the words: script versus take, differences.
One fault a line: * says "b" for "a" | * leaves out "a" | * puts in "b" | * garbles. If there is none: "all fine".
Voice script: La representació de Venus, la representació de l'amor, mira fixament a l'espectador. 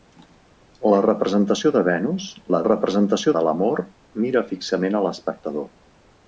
all fine